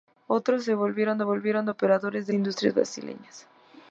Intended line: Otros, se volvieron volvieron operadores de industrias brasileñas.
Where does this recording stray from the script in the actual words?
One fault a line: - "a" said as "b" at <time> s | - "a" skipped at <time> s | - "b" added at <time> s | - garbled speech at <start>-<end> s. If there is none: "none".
none